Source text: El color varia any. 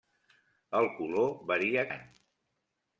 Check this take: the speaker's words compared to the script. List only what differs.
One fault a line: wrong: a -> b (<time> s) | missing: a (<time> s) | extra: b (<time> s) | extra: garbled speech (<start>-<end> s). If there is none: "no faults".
no faults